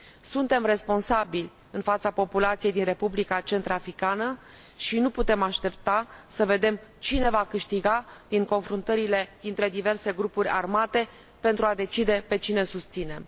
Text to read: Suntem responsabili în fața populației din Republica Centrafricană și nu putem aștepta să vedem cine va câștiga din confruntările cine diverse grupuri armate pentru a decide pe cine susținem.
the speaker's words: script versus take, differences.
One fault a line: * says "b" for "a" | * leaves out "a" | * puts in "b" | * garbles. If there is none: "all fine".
* says "dintre" for "cine"